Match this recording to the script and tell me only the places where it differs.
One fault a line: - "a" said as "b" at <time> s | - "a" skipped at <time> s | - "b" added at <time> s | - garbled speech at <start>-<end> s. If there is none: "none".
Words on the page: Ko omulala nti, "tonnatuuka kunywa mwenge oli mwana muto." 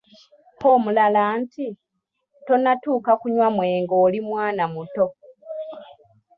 none